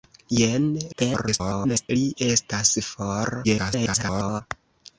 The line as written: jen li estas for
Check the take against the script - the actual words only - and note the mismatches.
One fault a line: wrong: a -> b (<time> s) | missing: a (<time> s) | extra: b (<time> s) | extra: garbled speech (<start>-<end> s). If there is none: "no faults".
extra: garbled speech (0.9-1.9 s)
extra: garbled speech (3.4-4.4 s)